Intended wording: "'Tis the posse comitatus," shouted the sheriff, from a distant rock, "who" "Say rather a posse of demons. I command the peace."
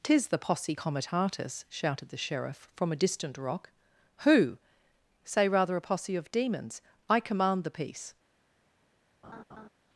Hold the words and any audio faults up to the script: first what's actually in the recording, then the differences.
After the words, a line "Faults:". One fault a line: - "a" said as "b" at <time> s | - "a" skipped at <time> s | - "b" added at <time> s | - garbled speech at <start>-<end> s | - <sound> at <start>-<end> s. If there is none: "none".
"'Tis the posse comitatus," shouted the sheriff, from a distant rock, "who" "Say rather a posse of demons. I command the peace."
Faults:
- laugh at 9.2-9.7 s